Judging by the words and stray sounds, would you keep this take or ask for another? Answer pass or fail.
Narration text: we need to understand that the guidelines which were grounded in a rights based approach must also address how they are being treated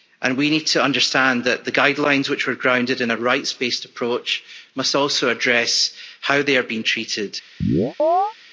fail